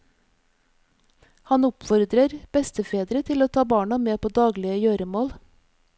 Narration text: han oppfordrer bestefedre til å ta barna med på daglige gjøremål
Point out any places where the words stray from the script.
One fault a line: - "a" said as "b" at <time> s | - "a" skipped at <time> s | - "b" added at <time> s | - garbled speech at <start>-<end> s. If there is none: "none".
none